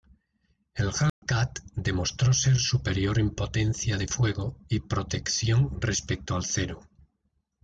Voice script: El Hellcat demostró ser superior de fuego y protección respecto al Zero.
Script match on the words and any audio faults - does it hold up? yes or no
no